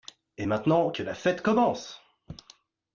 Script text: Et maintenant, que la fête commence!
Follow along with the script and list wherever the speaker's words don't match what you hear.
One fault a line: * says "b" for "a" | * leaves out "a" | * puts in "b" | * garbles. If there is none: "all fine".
all fine